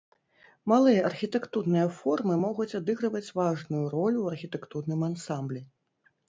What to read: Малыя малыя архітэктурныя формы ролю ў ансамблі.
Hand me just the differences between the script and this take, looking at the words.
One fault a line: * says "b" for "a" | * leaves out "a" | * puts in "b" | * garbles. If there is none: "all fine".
* leaves out "малыя"
* puts in "могуць адыгрываць важную"
* puts in "архітэктурным"